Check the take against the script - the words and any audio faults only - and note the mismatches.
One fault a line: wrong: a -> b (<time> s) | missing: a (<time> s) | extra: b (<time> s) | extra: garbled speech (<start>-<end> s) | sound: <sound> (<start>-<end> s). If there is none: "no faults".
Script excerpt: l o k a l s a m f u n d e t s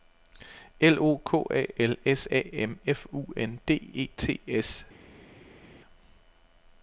no faults